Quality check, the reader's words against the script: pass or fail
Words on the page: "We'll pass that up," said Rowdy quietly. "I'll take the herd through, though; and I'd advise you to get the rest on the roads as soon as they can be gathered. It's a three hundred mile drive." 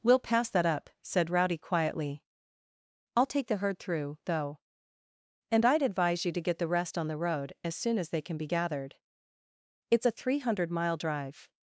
fail